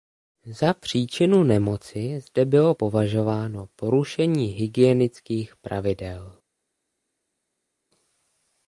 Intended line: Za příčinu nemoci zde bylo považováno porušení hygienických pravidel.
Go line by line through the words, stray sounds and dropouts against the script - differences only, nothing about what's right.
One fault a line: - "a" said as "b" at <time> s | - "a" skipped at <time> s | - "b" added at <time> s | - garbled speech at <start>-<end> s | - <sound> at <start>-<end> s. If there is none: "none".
none